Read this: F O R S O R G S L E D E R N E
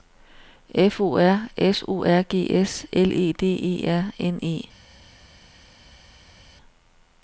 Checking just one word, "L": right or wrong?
right